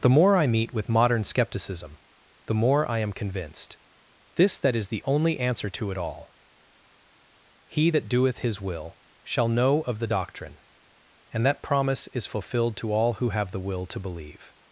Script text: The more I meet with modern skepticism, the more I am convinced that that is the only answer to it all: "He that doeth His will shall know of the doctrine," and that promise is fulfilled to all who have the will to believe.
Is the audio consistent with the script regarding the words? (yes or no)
no